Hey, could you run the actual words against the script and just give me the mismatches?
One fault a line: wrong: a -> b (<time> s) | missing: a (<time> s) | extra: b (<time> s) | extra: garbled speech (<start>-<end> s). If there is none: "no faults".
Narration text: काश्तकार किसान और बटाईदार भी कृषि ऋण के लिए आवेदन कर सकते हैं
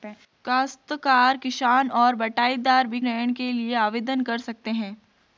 missing: कृषि (3.0 s)